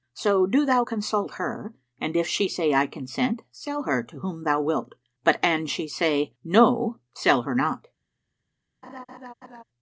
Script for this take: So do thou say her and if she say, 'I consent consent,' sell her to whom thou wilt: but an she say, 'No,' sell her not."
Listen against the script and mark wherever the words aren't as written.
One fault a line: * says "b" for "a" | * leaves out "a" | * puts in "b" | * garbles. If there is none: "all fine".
* says "consult" for "say"
* leaves out "consent"